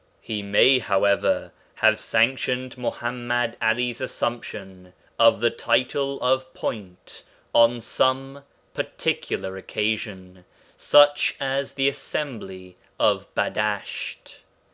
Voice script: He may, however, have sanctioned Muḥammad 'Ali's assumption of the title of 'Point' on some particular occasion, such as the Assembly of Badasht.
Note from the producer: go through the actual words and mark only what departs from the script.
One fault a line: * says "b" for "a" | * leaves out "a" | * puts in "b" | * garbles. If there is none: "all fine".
all fine